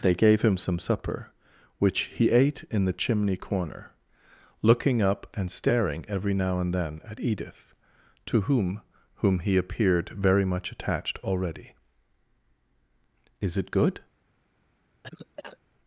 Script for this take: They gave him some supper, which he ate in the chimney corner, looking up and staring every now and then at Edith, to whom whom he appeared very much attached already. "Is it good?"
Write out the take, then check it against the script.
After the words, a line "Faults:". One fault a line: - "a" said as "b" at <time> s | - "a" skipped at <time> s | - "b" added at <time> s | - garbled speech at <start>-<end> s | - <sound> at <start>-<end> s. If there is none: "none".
They gave him some supper, which he ate in the chimney corner, looking up and staring every now and then at Edith, to whom whom he appeared very much attached already. "Is it good?"
Faults:
- cough at 15.0-15.6 s